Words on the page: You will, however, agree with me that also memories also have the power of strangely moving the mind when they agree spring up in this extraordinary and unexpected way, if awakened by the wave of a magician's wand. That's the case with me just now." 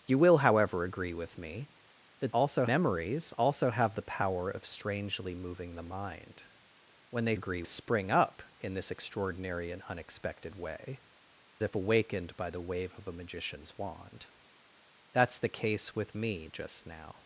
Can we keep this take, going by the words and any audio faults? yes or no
yes